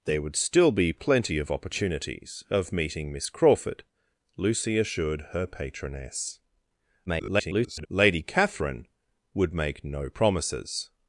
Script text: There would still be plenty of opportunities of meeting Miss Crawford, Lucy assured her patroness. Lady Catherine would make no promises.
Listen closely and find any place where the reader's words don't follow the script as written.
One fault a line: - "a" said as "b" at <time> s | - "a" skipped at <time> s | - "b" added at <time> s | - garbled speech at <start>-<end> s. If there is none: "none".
- garbled speech at 7.1-7.9 s